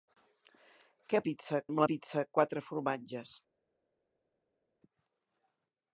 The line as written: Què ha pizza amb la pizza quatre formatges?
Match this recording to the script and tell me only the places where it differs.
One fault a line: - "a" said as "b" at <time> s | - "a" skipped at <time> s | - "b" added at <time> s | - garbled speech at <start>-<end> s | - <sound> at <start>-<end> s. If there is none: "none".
none